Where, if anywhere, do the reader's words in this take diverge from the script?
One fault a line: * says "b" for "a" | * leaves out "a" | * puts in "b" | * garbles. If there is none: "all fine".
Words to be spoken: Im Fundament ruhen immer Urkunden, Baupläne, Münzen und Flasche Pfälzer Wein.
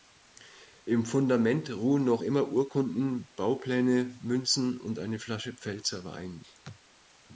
* puts in "noch"
* puts in "eine"